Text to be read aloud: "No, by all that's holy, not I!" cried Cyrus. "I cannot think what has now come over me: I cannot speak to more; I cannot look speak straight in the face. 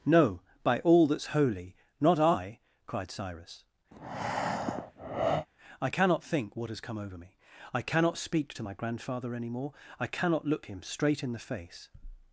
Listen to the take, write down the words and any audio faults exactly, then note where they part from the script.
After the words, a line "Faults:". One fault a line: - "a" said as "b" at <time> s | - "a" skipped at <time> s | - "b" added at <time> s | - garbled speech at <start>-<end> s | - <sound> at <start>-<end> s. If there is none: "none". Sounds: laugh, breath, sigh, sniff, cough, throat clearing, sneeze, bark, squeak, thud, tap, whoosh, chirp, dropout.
"No, by all that's holy, not I!" cried Cyrus. "I cannot think what has come over me: I cannot speak to my grandfather any more; I cannot look him straight in the face.
Faults:
- breath at 3.9-5.5 s
- "now" skipped at 6.8 s
- "my grandfather any" added at 8.6 s
- "speak" said as "him" at 10.7 s